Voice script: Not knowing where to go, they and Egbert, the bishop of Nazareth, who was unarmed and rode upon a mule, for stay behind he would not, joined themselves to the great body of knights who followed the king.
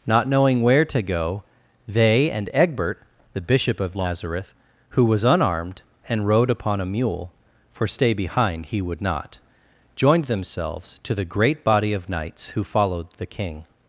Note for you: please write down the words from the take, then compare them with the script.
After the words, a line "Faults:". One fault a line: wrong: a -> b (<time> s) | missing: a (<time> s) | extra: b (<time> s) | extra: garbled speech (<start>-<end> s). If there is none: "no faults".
Not knowing where to go, they and Egbert, the bishop of Nazareth, who was unarmed and rode upon a mule, for stay behind he would not, joined themselves to the great body of knights who followed the king.
Faults:
no faults